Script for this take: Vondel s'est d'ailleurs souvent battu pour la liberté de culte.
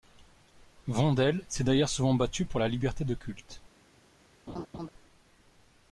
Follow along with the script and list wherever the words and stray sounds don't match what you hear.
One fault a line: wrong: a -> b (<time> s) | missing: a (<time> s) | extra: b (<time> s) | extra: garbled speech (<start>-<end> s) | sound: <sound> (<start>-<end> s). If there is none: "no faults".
sound: laugh (4.5-4.9 s)